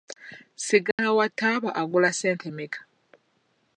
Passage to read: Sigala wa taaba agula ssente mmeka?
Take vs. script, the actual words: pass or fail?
pass